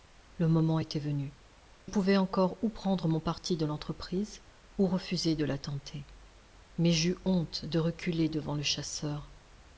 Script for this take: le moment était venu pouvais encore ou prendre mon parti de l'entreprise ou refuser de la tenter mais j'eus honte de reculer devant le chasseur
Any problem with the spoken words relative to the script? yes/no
no